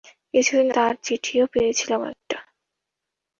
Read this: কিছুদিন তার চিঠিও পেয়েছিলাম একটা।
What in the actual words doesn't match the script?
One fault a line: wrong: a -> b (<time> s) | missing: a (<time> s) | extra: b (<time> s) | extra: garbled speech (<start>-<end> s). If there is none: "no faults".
no faults